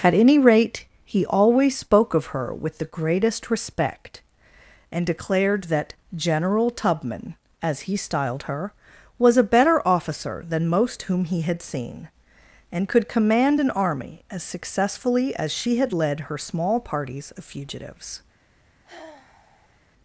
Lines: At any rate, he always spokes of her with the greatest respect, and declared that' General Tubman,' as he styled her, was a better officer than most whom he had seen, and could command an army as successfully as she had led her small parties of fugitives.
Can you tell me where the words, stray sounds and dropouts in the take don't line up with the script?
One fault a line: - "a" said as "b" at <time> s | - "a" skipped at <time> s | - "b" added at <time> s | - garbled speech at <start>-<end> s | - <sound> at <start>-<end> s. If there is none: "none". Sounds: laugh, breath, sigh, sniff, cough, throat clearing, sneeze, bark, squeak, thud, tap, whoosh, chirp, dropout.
- "spokes" said as "spoke" at 1.8 s
- sigh at 18.8-19.8 s